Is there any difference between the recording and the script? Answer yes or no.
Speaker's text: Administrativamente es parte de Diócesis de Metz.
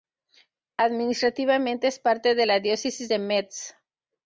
yes